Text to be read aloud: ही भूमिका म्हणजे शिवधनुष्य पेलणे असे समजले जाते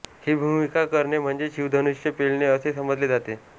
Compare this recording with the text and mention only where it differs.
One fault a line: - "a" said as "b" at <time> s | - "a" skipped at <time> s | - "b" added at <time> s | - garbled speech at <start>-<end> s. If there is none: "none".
- "करणे" added at 0.8 s